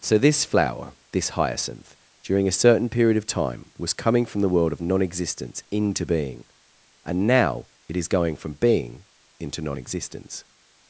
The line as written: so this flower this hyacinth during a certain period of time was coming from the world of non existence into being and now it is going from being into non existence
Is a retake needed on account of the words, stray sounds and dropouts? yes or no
no